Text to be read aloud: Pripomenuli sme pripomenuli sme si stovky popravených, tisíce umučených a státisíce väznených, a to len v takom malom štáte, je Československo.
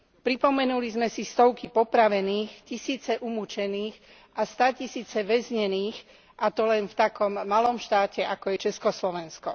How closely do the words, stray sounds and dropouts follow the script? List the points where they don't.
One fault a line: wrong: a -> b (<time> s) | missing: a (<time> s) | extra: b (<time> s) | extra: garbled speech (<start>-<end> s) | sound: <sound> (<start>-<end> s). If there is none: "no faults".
missing: pripomenuli sme (1.1 s)
extra: ako (8.2 s)